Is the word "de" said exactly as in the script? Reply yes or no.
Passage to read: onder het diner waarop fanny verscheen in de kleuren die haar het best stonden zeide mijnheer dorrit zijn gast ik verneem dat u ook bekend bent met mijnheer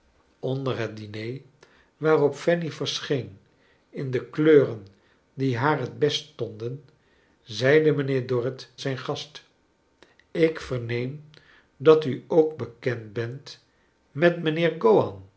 yes